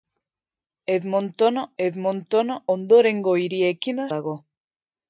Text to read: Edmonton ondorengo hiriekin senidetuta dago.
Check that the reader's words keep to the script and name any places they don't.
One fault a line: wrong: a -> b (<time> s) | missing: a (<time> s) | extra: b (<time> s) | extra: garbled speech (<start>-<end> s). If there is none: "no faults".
extra: edmonton (1.8 s)
missing: senidetuta (4.1 s)